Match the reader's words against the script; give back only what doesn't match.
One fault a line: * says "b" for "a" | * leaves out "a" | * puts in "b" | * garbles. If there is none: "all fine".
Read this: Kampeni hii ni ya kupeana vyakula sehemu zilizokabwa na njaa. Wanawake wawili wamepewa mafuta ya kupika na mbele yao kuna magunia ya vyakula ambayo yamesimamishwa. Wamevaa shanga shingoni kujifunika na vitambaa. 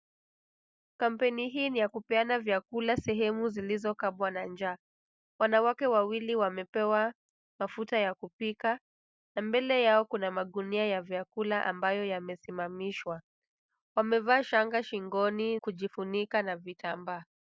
all fine